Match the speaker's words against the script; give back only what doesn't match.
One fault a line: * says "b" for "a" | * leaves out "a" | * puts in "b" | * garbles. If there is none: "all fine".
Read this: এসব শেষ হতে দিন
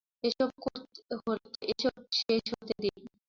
all fine